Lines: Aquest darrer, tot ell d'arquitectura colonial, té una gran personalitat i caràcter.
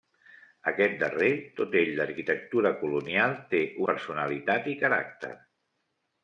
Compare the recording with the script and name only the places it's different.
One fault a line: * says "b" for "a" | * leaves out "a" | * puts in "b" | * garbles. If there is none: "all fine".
* leaves out "una gran"